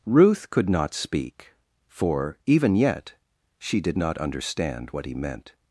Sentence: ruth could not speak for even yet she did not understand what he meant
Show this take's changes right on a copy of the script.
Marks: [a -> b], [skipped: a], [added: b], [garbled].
ruth could not speak for even yet she did not understand what he meant